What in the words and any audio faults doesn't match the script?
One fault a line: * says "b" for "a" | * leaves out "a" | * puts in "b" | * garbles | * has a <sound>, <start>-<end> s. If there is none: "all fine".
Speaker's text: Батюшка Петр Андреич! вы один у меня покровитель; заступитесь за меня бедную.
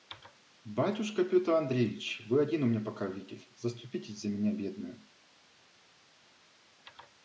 all fine